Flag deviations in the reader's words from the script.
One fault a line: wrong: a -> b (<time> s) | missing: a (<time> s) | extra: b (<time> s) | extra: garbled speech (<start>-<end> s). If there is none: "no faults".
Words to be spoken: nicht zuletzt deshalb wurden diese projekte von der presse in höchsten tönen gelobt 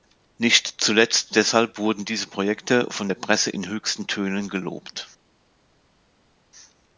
no faults